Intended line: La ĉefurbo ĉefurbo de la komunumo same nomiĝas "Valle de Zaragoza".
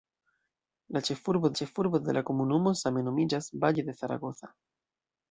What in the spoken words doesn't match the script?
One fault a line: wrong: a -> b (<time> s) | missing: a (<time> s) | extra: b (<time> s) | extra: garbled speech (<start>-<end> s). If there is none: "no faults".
no faults